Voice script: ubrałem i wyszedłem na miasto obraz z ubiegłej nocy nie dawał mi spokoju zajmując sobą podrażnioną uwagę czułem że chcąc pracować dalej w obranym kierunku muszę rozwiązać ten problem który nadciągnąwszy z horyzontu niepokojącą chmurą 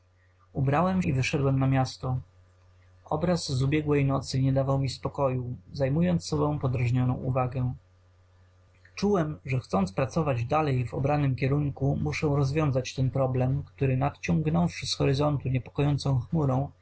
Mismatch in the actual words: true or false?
false